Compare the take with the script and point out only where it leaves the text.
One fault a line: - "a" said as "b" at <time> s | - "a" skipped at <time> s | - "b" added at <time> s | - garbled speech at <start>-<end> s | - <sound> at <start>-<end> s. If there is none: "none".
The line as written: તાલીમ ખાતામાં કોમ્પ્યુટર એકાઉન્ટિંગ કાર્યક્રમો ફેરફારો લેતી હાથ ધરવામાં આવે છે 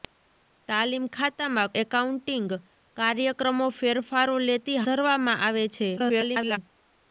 - "કોમ્પ્યુટર" skipped at 1.7 s
- "હાથ" skipped at 4.8 s
- garbled speech at 6.0-6.6 s